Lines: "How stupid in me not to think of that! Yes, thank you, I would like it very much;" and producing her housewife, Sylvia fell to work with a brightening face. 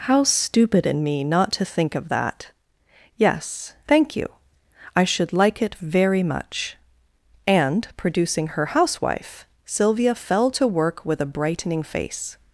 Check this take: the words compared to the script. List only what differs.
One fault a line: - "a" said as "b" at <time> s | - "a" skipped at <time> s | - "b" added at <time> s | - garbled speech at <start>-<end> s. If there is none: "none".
- "would" said as "should" at 5.0 s